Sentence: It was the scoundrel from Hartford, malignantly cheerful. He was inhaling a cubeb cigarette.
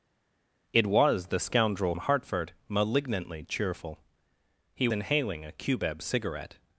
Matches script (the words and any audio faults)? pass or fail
fail